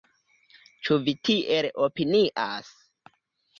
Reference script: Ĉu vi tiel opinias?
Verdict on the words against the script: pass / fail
pass